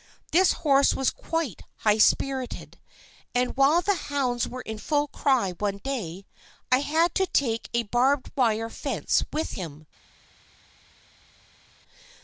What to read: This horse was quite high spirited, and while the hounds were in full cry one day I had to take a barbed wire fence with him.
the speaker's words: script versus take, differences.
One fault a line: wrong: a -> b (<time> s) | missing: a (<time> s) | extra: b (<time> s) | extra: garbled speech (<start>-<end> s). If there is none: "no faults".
no faults